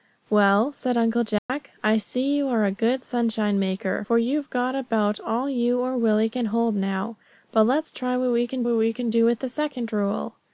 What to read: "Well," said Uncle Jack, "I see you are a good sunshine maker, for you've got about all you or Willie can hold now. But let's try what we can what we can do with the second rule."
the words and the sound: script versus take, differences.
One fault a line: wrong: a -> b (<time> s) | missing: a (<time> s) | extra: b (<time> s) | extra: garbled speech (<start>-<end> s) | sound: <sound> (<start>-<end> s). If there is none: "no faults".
sound: dropout (1.4-1.5 s)